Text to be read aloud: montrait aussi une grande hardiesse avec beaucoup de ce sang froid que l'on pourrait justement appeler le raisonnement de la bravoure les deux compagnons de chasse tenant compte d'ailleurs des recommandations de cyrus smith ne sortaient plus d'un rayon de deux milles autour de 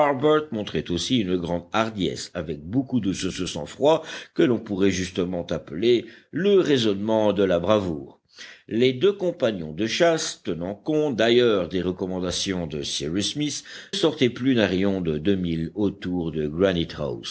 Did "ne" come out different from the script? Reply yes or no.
yes